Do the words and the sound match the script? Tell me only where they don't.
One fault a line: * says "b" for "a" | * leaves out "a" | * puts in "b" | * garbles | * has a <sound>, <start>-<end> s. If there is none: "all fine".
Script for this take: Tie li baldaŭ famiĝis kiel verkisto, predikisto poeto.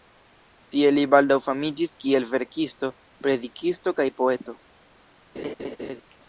* puts in "kaj"
* has a laugh, 5.4-6.0 s